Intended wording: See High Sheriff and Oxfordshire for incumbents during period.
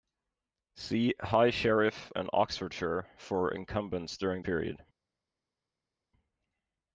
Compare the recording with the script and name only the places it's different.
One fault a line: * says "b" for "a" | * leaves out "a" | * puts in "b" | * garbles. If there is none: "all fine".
all fine